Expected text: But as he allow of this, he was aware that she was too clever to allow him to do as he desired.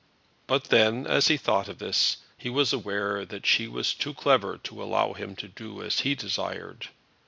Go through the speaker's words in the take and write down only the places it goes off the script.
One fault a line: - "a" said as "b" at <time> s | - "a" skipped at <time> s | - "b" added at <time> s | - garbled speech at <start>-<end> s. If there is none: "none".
- "then" added at 0.7 s
- "allow" said as "thought" at 1.4 s